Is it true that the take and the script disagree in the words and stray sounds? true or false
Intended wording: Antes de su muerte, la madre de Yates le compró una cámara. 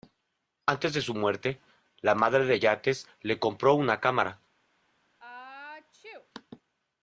true